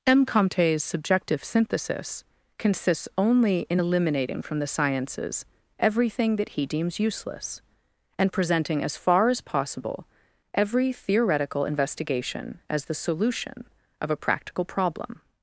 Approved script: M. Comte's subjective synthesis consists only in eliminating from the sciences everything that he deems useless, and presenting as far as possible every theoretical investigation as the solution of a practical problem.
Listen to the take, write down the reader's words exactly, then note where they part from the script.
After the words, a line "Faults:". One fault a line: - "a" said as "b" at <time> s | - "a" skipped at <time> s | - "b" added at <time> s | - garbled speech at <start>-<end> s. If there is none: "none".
M. Comte's subjective synthesis consists only in eliminating from the sciences everything that he deems useless, and presenting as far as possible every theoretical investigation as the solution of a practical problem.
Faults:
none